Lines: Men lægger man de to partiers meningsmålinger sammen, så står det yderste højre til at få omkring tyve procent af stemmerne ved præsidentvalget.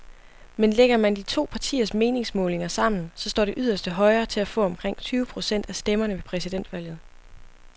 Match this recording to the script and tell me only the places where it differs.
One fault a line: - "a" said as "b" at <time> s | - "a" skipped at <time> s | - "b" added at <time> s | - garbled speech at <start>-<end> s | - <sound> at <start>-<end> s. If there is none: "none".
none